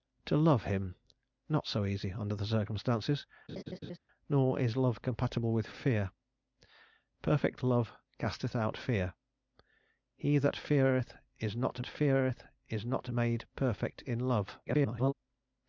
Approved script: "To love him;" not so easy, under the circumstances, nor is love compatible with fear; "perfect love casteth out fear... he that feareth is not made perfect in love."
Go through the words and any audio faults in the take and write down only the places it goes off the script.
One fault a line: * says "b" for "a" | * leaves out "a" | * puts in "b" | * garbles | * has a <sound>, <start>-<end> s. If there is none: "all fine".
* has a laugh, 3.5-4.0 s
* puts in "feareth is not"
* garbles